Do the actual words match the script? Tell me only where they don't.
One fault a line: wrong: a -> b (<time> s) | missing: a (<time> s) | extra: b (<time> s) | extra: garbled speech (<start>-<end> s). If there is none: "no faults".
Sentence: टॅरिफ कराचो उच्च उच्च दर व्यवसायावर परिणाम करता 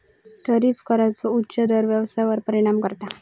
missing: उच्च (1.6 s)